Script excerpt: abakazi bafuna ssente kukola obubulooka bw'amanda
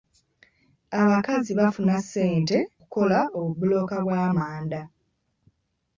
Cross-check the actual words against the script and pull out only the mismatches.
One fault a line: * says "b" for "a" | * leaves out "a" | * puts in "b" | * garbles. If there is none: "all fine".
all fine